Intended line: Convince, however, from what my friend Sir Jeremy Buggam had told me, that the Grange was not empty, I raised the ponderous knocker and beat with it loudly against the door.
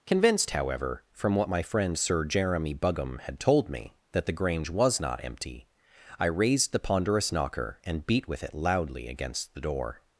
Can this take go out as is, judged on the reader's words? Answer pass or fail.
fail